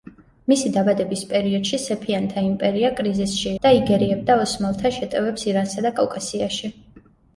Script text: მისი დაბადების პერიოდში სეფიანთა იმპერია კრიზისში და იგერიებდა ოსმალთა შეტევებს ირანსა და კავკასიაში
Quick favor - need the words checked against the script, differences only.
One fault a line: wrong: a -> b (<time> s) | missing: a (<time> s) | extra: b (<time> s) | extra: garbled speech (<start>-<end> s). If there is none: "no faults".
no faults